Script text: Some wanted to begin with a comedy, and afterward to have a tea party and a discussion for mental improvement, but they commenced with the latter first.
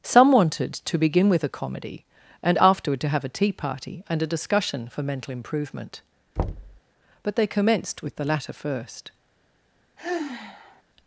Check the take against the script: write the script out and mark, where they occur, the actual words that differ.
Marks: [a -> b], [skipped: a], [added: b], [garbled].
Some wanted to begin with a comedy, and afterward to have a tea party and a discussion for mental improvement, but they commenced with the latter first.